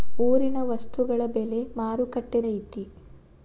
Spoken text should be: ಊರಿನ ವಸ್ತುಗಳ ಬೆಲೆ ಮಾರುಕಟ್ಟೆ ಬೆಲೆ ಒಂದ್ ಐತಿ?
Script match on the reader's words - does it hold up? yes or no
no